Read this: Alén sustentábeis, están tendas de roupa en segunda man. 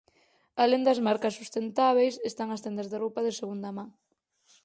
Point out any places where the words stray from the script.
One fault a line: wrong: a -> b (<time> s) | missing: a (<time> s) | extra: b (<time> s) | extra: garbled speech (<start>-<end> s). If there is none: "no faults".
extra: das marcas (0.9 s)
extra: as (2.5 s)
wrong: en -> de (3.2 s)